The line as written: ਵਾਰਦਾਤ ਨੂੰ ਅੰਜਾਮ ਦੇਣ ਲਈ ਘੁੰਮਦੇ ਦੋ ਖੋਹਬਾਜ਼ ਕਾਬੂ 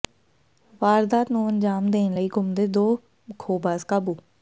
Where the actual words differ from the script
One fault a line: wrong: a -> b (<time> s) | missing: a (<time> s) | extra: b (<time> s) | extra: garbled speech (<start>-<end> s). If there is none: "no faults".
no faults